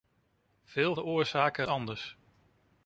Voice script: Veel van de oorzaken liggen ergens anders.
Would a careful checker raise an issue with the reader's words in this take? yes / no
yes